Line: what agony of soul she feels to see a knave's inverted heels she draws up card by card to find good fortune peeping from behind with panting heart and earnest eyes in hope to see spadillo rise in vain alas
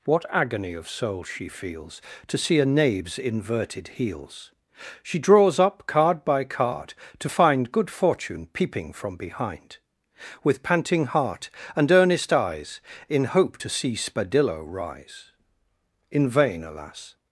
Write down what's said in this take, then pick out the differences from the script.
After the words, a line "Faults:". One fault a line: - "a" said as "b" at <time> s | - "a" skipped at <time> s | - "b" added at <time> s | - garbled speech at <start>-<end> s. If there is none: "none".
what agony of soul she feels to see a knave's inverted heels she draws up card by card to find good fortune peeping from behind with panting heart and earnest eyes in hope to see spadillo rise in vain alas
Faults:
none